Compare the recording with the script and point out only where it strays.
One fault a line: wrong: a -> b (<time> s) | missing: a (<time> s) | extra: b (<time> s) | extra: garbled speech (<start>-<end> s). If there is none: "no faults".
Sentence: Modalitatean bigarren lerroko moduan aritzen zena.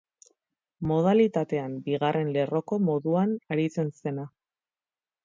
no faults